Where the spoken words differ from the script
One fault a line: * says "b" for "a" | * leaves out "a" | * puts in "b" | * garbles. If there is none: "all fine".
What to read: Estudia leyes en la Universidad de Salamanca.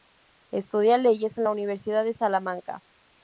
all fine